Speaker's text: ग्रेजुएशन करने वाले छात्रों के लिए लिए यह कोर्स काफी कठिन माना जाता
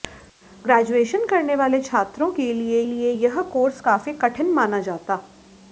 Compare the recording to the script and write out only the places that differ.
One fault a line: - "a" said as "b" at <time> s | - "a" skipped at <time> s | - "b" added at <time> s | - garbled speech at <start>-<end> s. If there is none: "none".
none